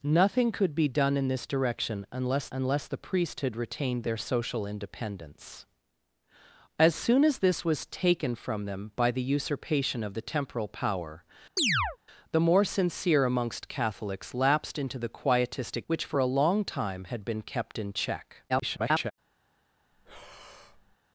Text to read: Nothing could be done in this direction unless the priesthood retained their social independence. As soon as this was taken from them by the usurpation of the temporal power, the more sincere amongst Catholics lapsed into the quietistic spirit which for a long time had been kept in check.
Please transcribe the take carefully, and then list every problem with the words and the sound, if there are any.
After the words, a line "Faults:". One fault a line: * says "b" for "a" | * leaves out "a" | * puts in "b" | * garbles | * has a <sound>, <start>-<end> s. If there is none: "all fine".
Nothing could be done in this direction unless unless the priesthood retained their social independence. As soon as this was taken from them by the usurpation of the temporal power, the more sincere amongst Catholics lapsed into the quietistic which for a long time had been kept in check. [garbled]
Faults:
* puts in "unless"
* has a chirp, 11.6-12.0 s
* leaves out "spirit"
* garbles
* has a breath, 19.9-21.0 s